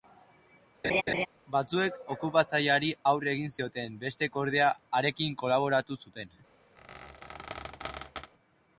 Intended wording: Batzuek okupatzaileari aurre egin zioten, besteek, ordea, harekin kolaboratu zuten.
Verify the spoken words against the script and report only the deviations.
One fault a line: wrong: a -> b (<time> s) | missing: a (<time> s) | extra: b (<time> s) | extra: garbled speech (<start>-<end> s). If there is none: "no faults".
no faults